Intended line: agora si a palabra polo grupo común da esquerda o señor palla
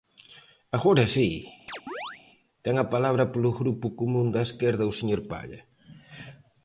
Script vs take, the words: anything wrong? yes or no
yes